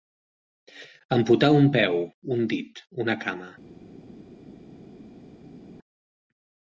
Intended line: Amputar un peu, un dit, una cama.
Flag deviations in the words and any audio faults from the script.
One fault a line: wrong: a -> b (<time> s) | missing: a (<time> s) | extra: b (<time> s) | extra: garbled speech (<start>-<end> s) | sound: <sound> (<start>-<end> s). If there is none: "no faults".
no faults